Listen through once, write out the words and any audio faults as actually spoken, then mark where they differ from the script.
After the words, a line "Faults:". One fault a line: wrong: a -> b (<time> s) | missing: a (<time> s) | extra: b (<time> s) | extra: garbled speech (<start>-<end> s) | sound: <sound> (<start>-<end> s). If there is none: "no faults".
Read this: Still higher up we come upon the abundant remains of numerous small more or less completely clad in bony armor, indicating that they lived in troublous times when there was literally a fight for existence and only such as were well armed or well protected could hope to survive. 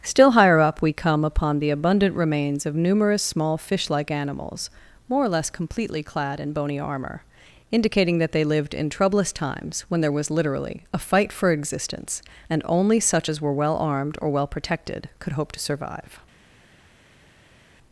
Still higher up we come upon the abundant remains of numerous small fish like animals, more or less completely clad in bony armor, indicating that they lived in troublous times when there was literally a fight for existence and only such as were well armed or well protected could hope to survive.
Faults:
extra: fish like animals (3.6 s)